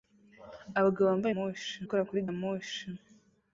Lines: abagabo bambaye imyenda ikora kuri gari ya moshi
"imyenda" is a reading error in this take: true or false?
true